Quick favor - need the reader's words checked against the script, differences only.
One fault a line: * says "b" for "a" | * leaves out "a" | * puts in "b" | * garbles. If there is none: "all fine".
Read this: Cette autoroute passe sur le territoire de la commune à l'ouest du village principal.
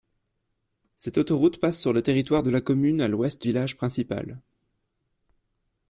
* leaves out "du"